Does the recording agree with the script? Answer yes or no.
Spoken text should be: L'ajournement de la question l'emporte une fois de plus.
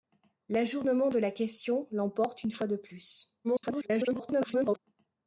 no